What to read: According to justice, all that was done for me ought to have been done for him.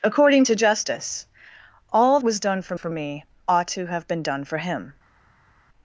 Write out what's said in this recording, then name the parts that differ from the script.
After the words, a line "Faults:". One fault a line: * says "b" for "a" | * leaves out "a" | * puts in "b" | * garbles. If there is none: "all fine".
According to justice, all was done for for me ought to have been done for him.
Faults:
* leaves out "that"
* puts in "for"